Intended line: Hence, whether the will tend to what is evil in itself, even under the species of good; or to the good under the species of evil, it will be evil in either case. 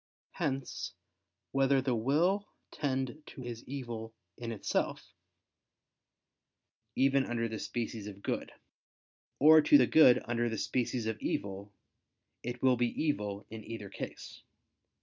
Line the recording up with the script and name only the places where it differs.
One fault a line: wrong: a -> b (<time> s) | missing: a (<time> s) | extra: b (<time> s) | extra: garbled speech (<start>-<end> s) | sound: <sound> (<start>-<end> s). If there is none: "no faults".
missing: what (3.4 s)